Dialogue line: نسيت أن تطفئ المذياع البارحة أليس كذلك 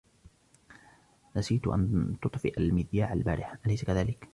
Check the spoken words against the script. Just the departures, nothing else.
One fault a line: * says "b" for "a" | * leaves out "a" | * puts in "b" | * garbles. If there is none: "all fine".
all fine